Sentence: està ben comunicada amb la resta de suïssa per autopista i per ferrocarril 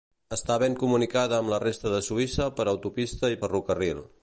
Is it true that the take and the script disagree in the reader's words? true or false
true